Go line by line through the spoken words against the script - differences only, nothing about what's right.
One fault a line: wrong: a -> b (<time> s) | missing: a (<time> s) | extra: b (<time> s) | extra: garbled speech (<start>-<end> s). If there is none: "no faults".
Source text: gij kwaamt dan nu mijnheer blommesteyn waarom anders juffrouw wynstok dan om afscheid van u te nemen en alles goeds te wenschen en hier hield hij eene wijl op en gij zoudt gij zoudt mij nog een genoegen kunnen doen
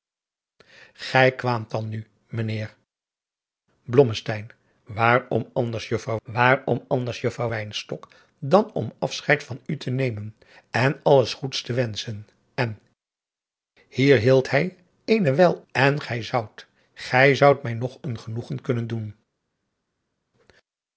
extra: waarom anders juffrouw (6.2 s)
missing: op (15.6 s)